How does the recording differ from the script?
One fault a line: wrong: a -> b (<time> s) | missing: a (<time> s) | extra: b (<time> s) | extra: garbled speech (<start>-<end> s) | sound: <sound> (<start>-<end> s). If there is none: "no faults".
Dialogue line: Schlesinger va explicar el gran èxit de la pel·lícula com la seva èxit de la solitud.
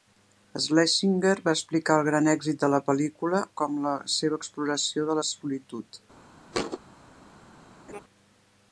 wrong: èxit -> exploració (4.4 s)
sound: thud (6.5-6.8 s)
sound: laugh (7.9-8.0 s)